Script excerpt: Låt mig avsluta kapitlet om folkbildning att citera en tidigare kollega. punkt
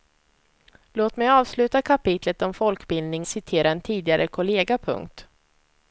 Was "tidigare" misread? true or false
false